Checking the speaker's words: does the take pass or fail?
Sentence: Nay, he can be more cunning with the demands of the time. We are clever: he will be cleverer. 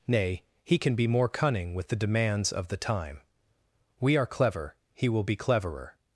pass